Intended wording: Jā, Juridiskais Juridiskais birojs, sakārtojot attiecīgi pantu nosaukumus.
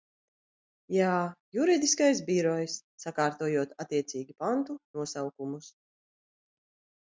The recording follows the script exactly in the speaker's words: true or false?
false